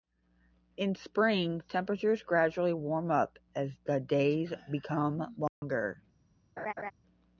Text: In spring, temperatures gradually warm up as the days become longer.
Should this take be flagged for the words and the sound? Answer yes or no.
yes